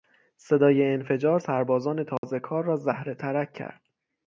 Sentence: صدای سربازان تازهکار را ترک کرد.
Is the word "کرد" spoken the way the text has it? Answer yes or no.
yes